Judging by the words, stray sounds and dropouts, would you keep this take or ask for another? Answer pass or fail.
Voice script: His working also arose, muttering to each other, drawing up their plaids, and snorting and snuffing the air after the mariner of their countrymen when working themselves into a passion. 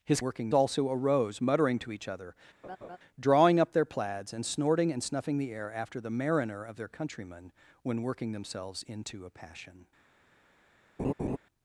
fail